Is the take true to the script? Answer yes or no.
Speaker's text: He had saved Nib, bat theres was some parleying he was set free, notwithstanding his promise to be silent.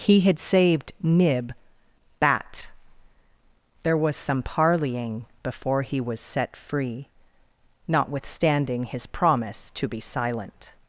no